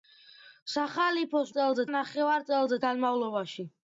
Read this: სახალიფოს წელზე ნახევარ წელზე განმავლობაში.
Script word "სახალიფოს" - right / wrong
right